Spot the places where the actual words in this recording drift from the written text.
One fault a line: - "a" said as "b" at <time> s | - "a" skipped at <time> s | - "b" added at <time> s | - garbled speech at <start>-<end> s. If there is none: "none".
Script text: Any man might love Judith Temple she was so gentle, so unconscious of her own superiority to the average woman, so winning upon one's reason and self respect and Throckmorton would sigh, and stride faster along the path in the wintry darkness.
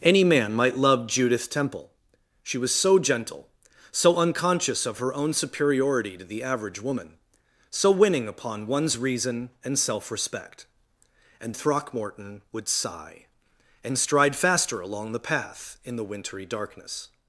none